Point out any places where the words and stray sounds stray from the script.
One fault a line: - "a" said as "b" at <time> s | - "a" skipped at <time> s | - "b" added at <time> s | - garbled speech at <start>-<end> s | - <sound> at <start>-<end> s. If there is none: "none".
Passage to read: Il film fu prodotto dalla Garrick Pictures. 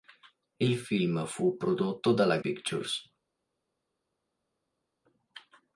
- "Garrick" skipped at 2.4 s